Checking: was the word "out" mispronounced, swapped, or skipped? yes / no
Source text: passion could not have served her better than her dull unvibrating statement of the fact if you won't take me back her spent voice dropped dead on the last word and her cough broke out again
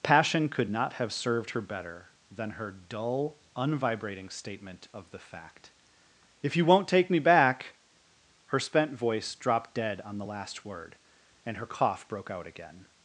no